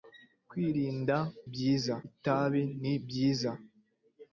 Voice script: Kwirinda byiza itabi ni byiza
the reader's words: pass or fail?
pass